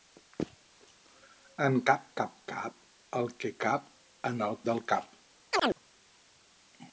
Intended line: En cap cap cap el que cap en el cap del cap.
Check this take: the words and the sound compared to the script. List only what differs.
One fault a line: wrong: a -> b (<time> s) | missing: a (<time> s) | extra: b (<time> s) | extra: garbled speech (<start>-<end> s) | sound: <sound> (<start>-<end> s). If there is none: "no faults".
missing: cap (4.6 s)
sound: chirp (5.5-5.8 s)